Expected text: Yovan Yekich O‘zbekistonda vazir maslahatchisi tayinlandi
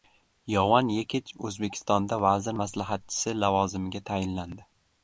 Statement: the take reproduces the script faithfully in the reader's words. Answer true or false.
false